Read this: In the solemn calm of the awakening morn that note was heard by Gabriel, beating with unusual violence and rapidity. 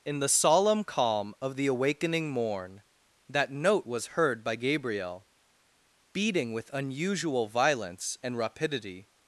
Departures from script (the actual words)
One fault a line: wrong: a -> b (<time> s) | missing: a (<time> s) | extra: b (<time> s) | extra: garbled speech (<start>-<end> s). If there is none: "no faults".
no faults